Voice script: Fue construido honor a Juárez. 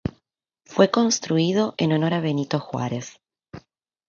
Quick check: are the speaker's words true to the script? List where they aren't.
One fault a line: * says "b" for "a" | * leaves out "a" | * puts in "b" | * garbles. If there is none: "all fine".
* puts in "en"
* puts in "Benito"